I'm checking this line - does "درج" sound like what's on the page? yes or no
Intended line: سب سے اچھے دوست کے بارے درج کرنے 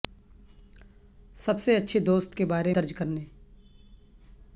yes